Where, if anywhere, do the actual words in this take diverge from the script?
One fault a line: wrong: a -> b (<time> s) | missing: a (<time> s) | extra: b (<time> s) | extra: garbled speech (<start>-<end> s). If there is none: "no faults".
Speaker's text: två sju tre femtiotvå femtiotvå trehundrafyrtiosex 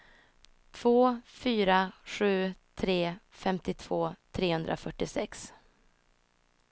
extra: fyra (1.2 s)
missing: femtiotvå (4.1 s)